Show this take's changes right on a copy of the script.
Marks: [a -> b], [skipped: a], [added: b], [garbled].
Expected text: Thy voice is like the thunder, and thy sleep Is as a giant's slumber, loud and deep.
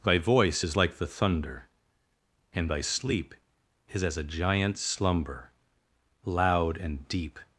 Thy voice is like the thunder, and thy sleep Is as a giant's slumber, loud and deep.